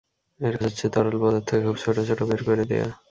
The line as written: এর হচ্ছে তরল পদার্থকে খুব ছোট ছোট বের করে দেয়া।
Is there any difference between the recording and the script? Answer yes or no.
no